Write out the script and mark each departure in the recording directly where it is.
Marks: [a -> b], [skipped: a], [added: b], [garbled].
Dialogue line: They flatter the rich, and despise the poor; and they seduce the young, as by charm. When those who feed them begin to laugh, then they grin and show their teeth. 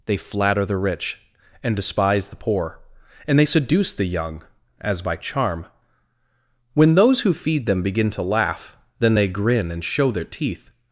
They flatter the rich, and despise the poor; and they seduce the young, as by charm. When those who feed them begin to laugh, then they grin and show their teeth.